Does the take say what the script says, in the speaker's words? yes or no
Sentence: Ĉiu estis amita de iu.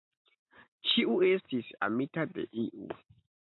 yes